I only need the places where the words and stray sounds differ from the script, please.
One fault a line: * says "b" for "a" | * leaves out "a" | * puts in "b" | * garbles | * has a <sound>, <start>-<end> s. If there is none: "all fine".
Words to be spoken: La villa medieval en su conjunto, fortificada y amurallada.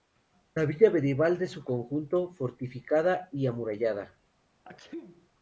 * has a sneeze, 4.6-5.3 s